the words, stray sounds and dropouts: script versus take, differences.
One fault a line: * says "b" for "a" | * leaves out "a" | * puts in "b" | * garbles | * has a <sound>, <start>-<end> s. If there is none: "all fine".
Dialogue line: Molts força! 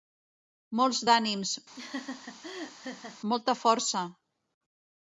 * puts in "d'ànims molta"
* has a laugh, 1.7-3.2 s